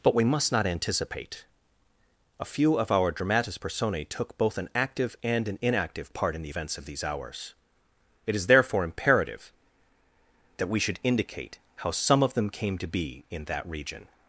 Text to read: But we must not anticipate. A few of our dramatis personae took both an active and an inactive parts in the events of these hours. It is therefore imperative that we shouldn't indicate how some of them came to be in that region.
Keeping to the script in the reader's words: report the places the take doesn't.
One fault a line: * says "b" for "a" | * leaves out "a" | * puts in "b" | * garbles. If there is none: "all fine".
* says "part" for "parts"
* says "should" for "shouldn't"